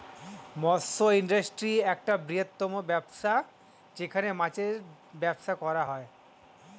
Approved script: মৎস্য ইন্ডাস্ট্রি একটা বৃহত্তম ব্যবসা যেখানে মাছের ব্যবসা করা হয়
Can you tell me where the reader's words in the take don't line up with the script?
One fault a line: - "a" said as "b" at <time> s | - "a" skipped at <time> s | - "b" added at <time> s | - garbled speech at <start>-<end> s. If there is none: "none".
none